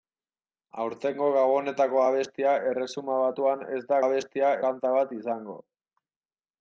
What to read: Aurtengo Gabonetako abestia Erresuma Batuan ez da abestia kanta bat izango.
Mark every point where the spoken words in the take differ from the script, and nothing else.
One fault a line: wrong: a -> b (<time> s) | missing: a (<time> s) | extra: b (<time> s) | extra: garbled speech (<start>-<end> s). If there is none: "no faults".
no faults